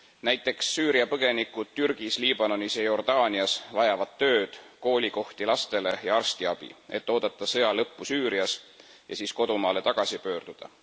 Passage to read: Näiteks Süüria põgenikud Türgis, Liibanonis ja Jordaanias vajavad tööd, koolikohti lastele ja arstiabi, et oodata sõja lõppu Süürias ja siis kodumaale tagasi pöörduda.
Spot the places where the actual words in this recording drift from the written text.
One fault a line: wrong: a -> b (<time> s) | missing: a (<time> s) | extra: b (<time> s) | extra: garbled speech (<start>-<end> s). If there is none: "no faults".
no faults